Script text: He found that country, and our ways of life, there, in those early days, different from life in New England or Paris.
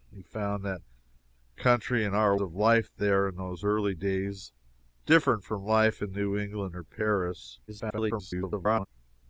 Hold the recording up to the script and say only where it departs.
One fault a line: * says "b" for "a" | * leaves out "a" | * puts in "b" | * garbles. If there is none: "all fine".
* leaves out "ways"
* garbles